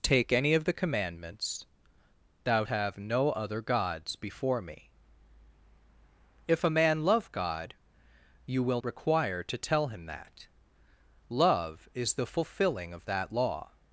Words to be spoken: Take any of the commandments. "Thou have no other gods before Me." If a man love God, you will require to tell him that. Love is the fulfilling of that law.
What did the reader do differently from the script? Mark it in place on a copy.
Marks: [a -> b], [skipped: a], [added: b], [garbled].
Take any of the commandments. "Thou have no other gods before Me." If a man love God, you will require to tell him that. Love is the fulfilling of that law.